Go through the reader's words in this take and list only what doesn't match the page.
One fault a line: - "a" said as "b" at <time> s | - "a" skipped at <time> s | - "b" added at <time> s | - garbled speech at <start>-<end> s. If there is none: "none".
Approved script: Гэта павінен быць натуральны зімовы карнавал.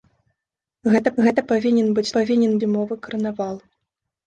- "гэта" added at 1.3 s
- "натуральны" said as "павінен" at 2.1 s